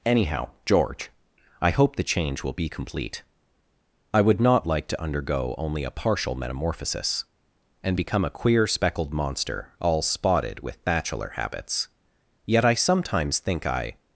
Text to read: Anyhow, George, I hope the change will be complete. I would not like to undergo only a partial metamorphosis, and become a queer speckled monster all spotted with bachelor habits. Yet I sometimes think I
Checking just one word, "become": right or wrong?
right